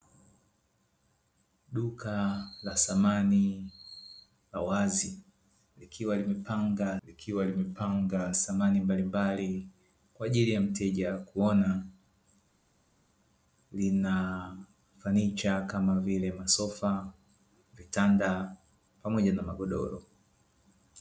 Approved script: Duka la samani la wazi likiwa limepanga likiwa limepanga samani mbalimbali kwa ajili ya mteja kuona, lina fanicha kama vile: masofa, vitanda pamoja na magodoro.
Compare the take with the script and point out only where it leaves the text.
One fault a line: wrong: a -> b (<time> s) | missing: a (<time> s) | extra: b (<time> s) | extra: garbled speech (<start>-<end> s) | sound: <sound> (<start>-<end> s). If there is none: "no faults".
no faults